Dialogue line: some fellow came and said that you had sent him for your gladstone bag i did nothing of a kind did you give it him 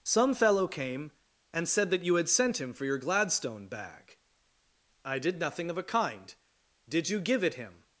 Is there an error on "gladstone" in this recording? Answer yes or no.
no